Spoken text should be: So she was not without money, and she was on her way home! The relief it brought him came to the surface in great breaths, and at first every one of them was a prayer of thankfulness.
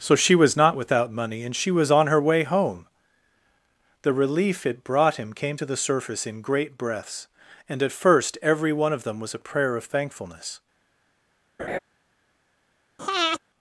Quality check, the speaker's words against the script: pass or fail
pass